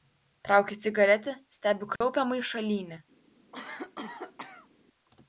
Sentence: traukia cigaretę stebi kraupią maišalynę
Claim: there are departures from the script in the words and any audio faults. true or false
true